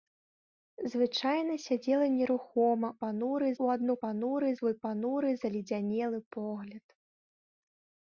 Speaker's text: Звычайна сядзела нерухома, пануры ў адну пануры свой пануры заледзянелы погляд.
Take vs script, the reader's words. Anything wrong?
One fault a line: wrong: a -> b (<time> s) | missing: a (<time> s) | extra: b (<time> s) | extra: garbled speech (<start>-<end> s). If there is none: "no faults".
no faults